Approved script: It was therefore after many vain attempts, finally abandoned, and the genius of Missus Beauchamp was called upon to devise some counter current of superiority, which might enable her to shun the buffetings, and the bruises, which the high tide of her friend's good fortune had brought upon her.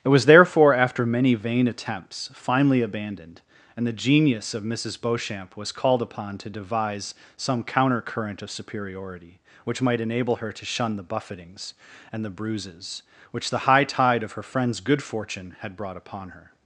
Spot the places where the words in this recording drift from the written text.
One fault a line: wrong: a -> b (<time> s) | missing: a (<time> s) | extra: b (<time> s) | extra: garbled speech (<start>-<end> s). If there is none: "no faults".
no faults